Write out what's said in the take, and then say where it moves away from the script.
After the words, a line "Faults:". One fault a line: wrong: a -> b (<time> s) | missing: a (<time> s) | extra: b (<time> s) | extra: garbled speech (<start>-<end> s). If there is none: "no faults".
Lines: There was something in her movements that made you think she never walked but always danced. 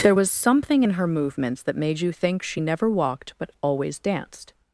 There was something in her movements that made you think she never walked but always danced.
Faults:
no faults